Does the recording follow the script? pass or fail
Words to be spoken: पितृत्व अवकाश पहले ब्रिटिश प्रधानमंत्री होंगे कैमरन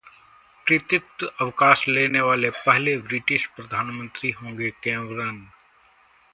fail